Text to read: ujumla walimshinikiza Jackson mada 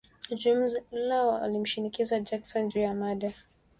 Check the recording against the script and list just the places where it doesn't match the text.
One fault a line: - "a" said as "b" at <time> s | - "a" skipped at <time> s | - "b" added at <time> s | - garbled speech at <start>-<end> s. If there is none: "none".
- "juu ya" added at 2.6 s